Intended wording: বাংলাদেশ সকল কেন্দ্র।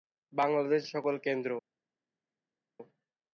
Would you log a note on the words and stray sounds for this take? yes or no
no